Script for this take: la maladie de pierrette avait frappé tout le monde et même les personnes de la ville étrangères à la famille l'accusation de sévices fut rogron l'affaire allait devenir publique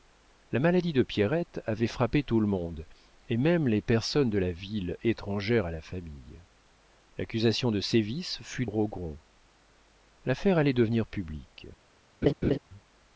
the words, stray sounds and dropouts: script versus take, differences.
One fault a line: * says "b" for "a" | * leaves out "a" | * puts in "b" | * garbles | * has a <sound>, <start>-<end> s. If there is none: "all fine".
* has a laugh, 12.2-12.6 s